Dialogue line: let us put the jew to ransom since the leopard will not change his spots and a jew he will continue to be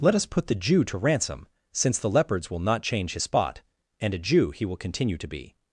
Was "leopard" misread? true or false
true